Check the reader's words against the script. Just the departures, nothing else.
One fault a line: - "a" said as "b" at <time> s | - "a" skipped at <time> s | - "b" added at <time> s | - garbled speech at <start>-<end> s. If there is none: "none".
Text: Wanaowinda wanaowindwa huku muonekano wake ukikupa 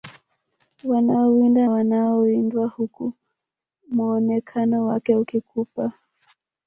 none